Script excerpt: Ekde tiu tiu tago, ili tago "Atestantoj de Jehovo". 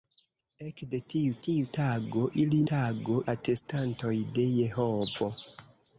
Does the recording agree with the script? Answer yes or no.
yes